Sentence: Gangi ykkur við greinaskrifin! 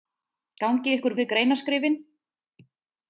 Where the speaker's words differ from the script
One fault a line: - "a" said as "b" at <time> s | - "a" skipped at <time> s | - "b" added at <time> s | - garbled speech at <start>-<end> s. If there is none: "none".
none